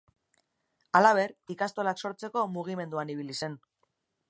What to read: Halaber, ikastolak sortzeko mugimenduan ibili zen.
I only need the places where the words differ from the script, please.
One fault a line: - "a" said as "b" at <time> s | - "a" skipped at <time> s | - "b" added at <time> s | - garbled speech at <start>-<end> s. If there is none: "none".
none